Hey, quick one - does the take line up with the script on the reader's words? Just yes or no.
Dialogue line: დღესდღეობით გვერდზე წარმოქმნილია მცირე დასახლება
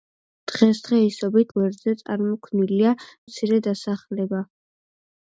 yes